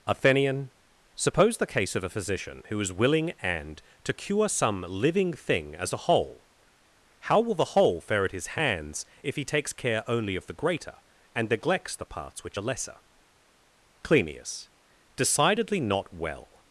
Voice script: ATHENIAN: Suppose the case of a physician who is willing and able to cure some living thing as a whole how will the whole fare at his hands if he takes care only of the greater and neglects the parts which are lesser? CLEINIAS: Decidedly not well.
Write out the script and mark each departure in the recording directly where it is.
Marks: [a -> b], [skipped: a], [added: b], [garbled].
ATHENIAN: Suppose the case of a physician who is willing and [skipped: able] to cure some living thing as a whole how will the whole fare at his hands if he takes care only of the greater and neglects the parts which are lesser? CLEINIAS: Decidedly not well.